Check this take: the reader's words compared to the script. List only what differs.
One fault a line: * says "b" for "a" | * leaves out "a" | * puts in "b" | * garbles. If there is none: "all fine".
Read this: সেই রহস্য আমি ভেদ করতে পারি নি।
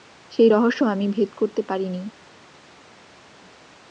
all fine